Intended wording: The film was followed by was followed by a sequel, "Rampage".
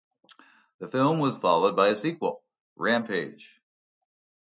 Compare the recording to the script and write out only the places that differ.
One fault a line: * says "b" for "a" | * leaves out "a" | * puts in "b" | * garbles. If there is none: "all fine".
* leaves out "was followed by"